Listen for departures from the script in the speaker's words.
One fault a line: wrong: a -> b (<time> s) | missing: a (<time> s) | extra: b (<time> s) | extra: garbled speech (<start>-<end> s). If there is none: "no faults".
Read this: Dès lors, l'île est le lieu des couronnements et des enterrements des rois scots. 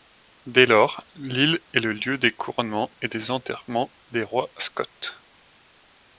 no faults